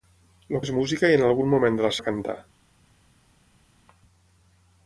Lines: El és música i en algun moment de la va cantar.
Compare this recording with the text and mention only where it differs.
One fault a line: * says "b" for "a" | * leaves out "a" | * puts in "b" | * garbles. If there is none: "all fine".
all fine